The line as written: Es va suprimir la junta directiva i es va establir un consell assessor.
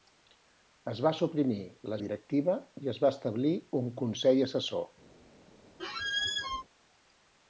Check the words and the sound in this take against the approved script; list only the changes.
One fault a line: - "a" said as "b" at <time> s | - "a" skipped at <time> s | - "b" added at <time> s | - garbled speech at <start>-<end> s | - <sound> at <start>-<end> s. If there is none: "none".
- "junta" skipped at 2.0 s
- squeak at 5.8-6.6 s